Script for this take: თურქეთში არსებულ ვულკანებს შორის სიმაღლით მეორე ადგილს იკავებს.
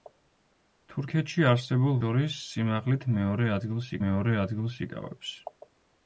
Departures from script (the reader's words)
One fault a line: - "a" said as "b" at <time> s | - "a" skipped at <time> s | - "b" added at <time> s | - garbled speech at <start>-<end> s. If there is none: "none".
- "ვულკანებს" skipped at 2.0 s
- "მეორე ადგილს" added at 4.1 s